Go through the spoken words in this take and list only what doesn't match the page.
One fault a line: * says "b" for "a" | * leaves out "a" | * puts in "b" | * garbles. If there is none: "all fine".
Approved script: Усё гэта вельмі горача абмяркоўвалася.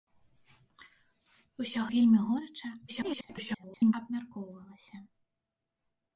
* leaves out "гэта"
* garbles